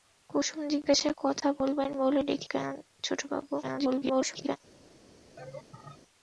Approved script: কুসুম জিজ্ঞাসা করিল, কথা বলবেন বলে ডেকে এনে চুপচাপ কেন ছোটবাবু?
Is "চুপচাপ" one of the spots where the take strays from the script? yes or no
yes